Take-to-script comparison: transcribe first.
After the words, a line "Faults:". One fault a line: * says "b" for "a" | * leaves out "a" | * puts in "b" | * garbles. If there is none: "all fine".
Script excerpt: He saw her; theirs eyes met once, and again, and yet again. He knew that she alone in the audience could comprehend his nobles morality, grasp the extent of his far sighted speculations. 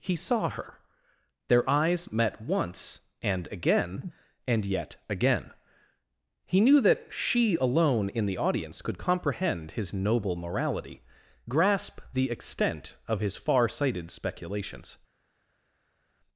He saw her; their eyes met once, and again, and yet again. He knew that she alone in the audience could comprehend his noble morality, grasp the extent of his far sighted speculations.
Faults:
* says "their" for "theirs"
* says "noble" for "nobles"